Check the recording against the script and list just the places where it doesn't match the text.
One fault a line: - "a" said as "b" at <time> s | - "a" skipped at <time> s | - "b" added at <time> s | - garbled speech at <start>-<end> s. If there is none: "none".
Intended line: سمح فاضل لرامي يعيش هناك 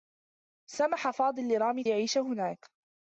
none